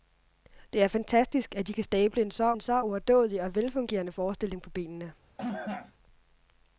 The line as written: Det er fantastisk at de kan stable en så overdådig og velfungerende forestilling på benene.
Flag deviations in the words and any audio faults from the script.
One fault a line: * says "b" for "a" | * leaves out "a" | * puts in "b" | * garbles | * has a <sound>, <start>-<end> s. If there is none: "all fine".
* puts in "en så"
* has a cough, 5.4-5.9 s